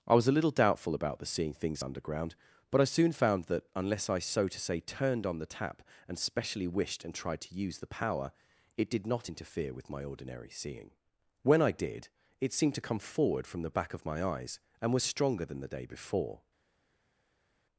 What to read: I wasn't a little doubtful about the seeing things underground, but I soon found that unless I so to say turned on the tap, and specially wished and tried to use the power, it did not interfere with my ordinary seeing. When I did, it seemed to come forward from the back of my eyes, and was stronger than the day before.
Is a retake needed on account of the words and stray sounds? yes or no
yes